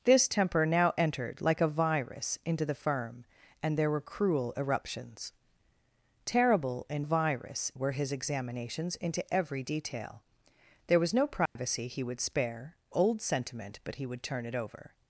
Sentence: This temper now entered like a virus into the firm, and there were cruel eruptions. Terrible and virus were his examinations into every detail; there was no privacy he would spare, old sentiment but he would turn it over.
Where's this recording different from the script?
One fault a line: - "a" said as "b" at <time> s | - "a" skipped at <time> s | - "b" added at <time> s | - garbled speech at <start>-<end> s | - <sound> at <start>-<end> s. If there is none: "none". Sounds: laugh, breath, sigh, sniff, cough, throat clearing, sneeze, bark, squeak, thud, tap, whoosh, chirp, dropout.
- dropout at 11.5-11.6 s